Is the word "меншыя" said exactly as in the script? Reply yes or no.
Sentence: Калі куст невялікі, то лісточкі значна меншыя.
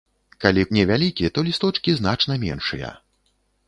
yes